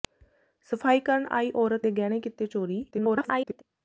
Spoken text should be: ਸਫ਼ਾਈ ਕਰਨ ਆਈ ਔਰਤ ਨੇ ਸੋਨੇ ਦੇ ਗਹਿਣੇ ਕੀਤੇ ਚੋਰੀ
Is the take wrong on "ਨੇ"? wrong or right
wrong